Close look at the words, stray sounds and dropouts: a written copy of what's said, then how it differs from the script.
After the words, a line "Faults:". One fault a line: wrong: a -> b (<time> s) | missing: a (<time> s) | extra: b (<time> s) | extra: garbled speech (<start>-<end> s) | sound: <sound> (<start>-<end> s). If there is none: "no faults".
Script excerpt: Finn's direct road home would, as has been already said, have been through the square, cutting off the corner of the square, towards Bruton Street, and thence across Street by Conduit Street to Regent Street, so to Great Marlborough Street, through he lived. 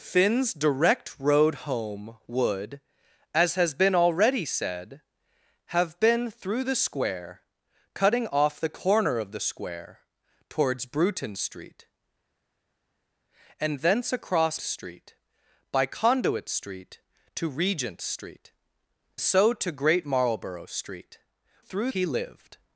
Finn's direct road home would, as has been already said, have been through the square, cutting off the corner of the square, towards Bruton Street, and thence across Street by Conduit Street to Regent Street, so to Great Marlborough Street, through he lived.
Faults:
no faults